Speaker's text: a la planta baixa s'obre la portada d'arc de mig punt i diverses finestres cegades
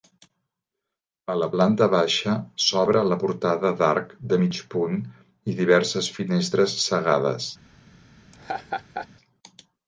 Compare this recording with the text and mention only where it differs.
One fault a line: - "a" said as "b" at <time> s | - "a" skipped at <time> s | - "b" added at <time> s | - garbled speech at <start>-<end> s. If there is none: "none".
none